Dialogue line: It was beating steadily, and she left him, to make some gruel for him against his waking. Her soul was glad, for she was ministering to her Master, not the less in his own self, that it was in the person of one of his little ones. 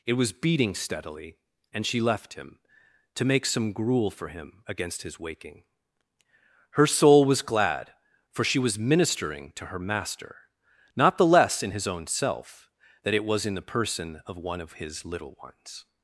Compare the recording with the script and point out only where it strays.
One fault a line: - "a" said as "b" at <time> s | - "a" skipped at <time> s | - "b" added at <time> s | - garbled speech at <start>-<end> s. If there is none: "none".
none